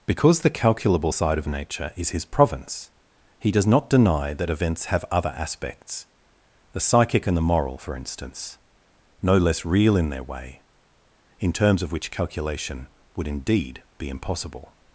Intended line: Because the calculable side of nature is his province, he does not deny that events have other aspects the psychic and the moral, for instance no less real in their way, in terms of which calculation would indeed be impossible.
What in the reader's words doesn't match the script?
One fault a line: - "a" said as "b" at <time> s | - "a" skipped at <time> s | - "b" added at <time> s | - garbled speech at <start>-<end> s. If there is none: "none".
none